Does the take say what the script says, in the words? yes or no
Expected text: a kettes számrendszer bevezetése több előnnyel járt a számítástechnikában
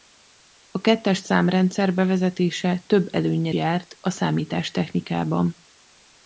yes